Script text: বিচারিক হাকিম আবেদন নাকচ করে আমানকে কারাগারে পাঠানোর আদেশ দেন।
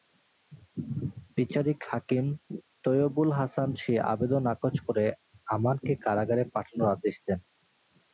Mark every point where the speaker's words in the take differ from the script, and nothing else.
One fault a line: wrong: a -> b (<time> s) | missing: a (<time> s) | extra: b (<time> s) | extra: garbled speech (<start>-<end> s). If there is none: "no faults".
extra: তৈয়বুল হাসান সেই (2.8 s)